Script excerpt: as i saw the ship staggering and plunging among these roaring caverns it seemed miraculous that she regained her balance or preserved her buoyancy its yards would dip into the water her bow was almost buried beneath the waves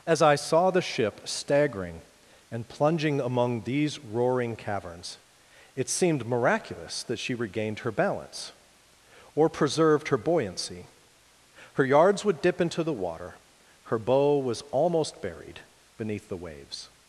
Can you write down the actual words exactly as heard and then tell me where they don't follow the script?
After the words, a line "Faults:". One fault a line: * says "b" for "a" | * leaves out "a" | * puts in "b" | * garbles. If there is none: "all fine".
as i saw the ship staggering and plunging among these roaring caverns it seemed miraculous that she regained her balance or preserved her buoyancy her yards would dip into the water her bow was almost buried beneath the waves
Faults:
* says "her" for "its"